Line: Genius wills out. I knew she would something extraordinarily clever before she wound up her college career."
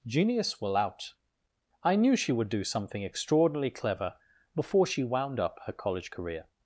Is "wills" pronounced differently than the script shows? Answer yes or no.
yes